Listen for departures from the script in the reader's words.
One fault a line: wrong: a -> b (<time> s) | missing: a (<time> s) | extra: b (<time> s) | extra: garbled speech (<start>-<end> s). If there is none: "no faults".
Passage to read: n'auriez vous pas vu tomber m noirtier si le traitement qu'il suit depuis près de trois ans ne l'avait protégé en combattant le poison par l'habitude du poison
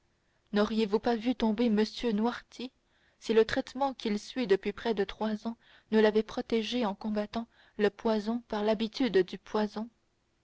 no faults